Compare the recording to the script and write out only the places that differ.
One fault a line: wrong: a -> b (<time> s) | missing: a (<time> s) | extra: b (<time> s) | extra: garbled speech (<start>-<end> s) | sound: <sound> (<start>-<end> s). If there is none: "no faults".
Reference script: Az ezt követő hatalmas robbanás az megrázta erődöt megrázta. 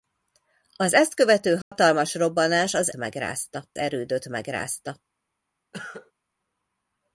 sound: dropout (1.6-1.7 s)
sound: cough (5.7-6.1 s)